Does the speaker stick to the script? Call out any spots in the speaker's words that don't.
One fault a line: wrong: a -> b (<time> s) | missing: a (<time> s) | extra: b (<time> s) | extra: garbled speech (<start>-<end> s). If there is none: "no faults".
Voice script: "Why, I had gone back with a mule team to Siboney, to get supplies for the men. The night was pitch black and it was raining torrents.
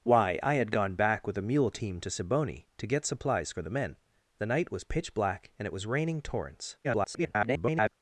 extra: garbled speech (6.8-7.9 s)